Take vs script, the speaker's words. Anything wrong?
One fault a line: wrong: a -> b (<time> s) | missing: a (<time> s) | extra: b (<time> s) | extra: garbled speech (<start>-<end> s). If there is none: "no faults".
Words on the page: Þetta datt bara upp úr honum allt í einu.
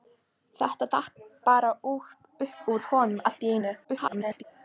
extra: garbled speech (3.8-4.4 s)